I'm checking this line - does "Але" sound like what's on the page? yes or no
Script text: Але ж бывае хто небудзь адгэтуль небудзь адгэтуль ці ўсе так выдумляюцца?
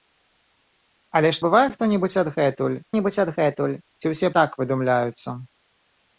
yes